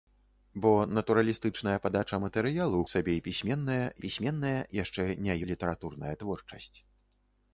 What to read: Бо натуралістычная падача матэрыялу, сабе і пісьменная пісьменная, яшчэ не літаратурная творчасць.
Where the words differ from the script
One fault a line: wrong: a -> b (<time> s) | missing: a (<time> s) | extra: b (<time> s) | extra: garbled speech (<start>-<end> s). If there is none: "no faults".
no faults